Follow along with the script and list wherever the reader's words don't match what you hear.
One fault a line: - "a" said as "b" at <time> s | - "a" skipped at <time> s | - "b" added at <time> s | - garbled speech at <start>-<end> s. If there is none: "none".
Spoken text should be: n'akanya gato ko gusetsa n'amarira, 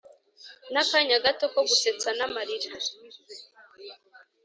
none